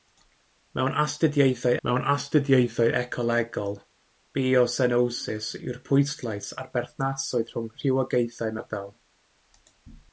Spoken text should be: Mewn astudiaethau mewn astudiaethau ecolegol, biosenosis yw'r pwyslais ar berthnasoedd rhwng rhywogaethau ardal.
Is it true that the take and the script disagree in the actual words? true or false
false